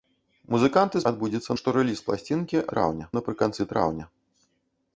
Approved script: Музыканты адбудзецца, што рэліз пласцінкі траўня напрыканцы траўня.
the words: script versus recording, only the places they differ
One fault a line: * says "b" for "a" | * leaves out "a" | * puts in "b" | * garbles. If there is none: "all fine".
all fine